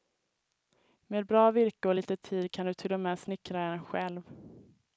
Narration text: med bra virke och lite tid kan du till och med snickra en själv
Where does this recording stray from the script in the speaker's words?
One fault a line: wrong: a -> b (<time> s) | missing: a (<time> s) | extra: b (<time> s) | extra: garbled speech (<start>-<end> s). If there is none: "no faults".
no faults